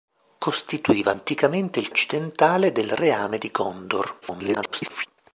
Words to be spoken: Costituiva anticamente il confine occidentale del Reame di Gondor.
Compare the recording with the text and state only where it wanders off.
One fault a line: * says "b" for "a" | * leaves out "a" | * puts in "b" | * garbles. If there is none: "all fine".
* leaves out "confine"
* garbles